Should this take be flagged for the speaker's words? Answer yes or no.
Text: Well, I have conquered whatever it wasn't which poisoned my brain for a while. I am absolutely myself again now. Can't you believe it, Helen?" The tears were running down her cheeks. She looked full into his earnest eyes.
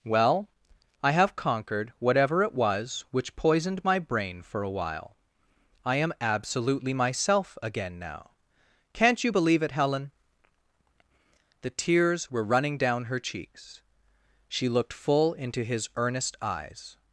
yes